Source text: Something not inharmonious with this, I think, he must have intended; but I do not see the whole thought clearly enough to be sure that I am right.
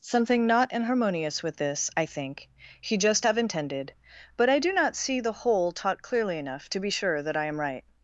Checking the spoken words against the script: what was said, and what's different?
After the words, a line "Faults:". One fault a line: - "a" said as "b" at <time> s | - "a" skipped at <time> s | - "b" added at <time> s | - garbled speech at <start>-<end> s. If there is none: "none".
Something not inharmonious with this, I think, he just have intended; but I do not see the whole taught clearly enough to be sure that I am right.
Faults:
- "must" said as "just" at 3.0 s
- "thought" said as "taught" at 5.7 s